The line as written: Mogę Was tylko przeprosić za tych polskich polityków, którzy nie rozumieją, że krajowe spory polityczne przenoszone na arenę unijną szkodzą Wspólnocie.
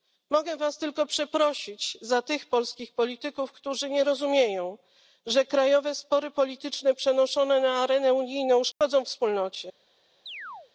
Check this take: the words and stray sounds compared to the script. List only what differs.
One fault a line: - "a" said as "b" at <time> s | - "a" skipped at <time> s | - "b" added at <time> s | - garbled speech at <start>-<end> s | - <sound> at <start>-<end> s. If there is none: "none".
- dropout at 8.7-8.8 s
- chirp at 10.3-10.7 s